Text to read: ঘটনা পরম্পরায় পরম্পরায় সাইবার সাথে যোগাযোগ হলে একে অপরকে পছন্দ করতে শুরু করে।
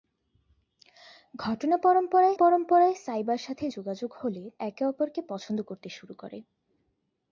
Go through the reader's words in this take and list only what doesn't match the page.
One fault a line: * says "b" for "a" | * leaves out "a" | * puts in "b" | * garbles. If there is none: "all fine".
all fine